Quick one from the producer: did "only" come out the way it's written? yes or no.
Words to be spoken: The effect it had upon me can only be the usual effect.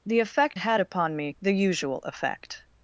no